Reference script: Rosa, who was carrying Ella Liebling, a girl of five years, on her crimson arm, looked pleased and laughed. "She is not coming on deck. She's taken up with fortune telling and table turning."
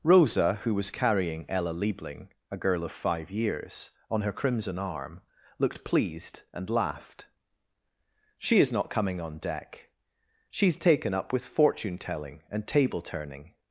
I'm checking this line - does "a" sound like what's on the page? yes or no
yes